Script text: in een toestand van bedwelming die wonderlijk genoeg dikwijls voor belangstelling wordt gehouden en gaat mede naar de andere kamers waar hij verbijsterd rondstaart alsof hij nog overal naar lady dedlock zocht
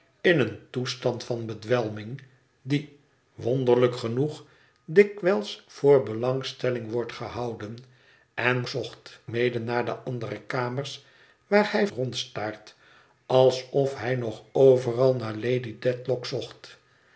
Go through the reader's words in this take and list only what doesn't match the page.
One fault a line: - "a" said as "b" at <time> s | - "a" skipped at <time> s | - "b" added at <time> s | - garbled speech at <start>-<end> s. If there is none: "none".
- "gaat" said as "zocht" at 8.7 s
- "verbijsterd" skipped at 11.9 s